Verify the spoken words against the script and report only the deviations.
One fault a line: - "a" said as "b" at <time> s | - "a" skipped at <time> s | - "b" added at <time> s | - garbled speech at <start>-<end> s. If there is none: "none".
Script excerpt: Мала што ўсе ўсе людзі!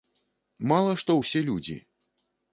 - "ўсе" skipped at 1.4 s